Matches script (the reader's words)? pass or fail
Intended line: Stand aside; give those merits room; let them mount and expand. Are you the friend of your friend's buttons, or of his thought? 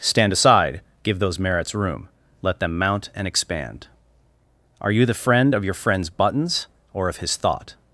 pass